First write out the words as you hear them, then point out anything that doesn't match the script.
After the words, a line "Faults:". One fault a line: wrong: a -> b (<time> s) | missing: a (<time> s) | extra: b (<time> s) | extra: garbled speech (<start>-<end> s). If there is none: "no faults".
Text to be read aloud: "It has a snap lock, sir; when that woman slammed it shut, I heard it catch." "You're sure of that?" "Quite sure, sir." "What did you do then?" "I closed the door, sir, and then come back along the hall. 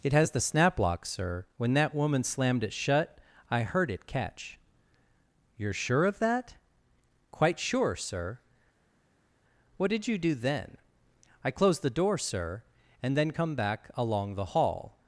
"It has the snap lock, sir; when that woman slammed it shut, I heard it catch." "You're sure of that?" "Quite sure, sir." "What did you do then?" "I closed the door, sir, and then come back along the hall.
Faults:
wrong: a -> the (0.3 s)